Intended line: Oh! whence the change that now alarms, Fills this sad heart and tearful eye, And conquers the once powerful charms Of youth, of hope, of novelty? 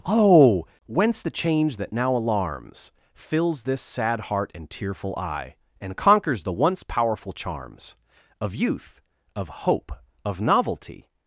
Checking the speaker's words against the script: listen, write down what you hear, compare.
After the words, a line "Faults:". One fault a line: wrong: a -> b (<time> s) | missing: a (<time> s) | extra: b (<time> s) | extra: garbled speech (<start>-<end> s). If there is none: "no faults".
Oh! whence the change that now alarms, Fills this sad heart and tearful eye, And conquers the once powerful charms Of youth, of hope, of novelty?
Faults:
no faults